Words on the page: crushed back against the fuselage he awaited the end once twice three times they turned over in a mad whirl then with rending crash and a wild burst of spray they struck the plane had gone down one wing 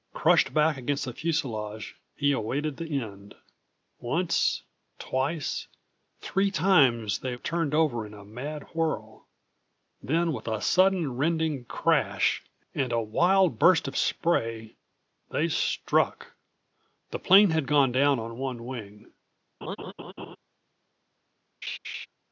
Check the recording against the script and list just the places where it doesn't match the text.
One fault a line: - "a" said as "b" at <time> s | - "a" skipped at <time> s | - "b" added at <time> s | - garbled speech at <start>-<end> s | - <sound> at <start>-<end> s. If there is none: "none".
- "a sudden" added at 10.5 s
- "on" added at 18.2 s
- laugh at 19.6-20.4 s
- laugh at 21.6-22.1 s